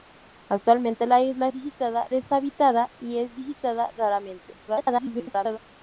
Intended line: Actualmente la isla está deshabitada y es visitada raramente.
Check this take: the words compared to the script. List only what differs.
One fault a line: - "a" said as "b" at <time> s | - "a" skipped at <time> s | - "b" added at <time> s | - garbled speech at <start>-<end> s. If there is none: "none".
- "está" said as "visitada" at 1.5 s
- garbled speech at 4.7-5.6 s